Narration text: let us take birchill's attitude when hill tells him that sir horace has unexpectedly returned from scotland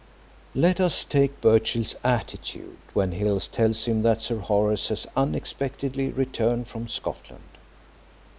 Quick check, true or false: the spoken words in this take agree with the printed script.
true